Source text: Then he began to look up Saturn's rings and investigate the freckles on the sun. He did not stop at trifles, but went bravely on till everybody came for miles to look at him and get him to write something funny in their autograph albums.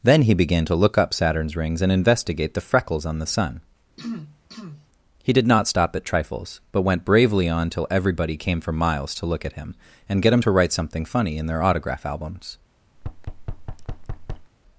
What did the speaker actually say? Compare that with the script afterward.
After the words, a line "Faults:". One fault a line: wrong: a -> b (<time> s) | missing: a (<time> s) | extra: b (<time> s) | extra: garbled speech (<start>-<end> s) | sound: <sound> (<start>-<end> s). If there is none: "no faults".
Then he began to look up Saturn's rings and investigate the freckles on the sun. He did not stop at trifles, but went bravely on till everybody came for miles to look at him and get him to write something funny in their autograph albums.
Faults:
sound: throat clearing (4.0-4.9 s)
sound: thud (13.0-14.5 s)